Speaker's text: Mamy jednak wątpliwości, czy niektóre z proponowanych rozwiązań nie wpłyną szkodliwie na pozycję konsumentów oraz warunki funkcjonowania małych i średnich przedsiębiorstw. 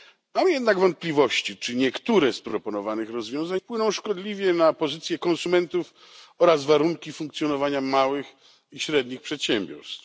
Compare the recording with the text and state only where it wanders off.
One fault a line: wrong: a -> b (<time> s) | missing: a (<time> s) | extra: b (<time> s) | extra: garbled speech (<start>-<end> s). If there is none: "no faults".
missing: nie (3.6 s)